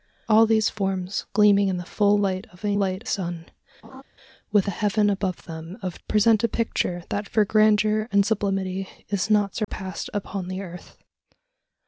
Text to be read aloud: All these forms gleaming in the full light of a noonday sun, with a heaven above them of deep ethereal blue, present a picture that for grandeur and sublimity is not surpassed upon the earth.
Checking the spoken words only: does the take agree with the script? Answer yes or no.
no